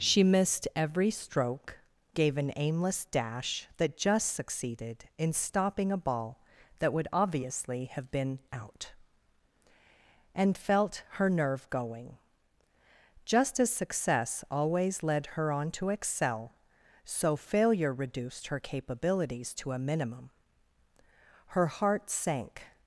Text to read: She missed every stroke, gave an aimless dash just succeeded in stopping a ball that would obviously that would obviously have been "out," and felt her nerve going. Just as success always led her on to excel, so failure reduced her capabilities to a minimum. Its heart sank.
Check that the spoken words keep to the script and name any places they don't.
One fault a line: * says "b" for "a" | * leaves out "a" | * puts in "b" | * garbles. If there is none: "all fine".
* puts in "that"
* leaves out "that would obviously"
* says "Her" for "Its"